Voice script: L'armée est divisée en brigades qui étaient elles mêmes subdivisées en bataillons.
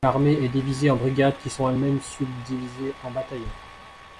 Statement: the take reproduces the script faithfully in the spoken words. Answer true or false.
false